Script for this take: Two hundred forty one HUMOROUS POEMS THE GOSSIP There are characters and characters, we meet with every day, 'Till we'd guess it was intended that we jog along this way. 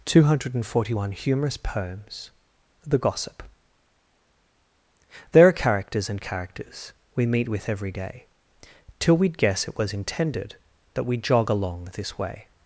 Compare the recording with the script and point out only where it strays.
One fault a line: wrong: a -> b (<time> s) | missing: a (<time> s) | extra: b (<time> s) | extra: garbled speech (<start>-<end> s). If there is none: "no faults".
no faults